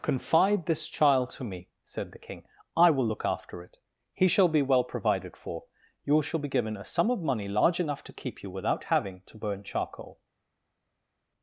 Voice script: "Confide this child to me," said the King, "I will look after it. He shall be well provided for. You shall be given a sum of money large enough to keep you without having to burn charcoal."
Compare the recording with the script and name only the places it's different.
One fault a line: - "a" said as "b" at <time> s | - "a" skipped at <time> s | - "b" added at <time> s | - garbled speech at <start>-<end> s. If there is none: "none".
none